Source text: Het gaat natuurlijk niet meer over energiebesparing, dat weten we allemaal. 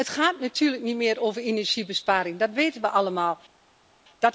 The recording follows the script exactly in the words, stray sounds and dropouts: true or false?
true